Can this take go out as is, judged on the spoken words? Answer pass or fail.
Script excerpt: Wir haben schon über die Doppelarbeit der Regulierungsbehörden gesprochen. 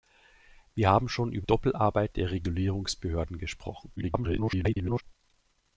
fail